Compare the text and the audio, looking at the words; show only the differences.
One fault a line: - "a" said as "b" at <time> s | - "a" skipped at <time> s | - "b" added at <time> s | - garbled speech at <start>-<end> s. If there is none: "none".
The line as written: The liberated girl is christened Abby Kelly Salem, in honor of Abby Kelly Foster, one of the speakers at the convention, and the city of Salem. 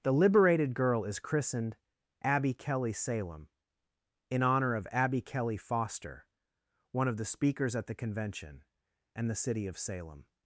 none